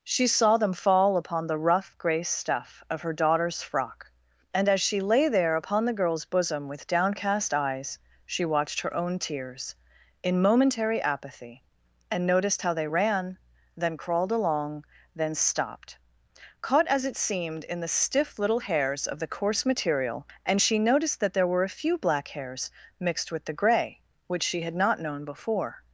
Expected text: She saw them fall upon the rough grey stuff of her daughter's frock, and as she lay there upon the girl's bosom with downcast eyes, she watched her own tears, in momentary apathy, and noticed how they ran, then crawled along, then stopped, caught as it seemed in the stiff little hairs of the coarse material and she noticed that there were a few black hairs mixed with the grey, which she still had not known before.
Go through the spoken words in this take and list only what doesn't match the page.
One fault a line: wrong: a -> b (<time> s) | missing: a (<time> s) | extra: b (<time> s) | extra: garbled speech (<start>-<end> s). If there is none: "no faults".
missing: still (24.6 s)